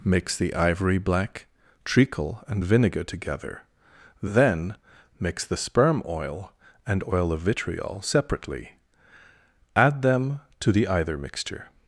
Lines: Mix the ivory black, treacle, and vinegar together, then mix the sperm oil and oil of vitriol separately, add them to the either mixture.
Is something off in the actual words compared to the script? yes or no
no